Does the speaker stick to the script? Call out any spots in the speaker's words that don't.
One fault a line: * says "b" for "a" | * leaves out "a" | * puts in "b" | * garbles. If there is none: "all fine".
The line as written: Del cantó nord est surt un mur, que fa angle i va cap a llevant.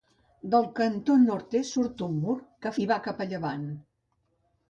* leaves out "fa angle"